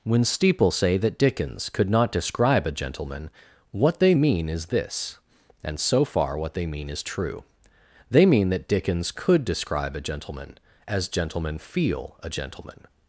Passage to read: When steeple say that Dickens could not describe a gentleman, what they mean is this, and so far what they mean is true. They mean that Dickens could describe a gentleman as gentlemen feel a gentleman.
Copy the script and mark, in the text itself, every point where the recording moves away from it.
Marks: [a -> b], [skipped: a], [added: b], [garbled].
When steeple say that Dickens could not describe a gentleman, what they mean is this, and so far what they mean is true. They mean that Dickens could describe a gentleman as gentlemen feel a gentleman.